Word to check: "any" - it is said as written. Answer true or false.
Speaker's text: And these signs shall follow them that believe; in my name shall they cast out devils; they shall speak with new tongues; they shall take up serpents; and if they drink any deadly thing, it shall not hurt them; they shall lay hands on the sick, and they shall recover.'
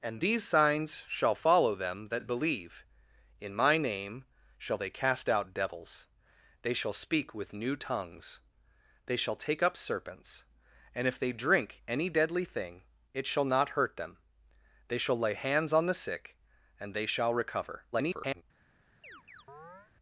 true